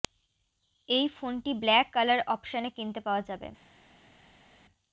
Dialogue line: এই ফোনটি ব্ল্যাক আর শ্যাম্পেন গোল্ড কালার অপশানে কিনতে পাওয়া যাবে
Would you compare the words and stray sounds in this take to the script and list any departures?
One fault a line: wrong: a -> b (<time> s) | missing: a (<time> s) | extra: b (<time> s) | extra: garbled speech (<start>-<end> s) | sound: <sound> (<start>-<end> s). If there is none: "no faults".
missing: আর শ্যাম্পেন গোল্ড (1.9 s)